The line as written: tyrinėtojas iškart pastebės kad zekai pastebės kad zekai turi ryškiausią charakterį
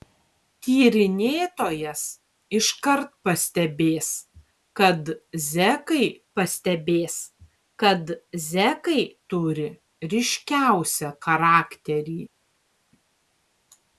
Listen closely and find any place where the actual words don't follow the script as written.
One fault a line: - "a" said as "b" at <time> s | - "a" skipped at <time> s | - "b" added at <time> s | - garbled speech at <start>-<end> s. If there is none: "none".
none